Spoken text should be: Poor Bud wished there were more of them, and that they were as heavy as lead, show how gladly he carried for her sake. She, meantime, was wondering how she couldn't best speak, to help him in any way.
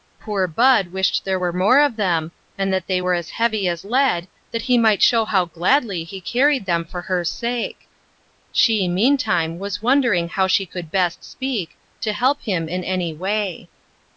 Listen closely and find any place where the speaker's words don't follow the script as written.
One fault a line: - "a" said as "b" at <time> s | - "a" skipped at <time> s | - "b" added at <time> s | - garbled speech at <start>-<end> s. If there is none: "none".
- "that he might" added at 4.5 s
- "them" added at 6.7 s
- "couldn't" said as "could" at 10.7 s